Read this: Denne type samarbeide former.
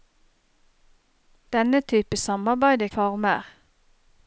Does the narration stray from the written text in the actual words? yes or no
no